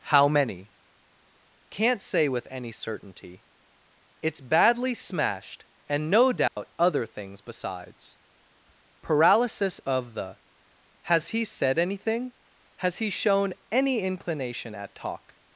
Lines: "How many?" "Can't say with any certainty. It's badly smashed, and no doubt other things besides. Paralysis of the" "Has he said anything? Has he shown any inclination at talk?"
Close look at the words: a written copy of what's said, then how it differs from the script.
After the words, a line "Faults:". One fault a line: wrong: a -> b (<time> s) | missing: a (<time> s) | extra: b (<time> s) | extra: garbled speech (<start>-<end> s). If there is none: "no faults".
"How many?" "Can't say with any certainty. It's badly smashed, and no doubt other things besides. Paralysis of the" "Has he said anything? Has he shown any inclination at talk?"
Faults:
no faults